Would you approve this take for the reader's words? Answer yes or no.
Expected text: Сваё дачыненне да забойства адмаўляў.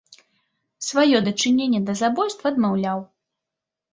yes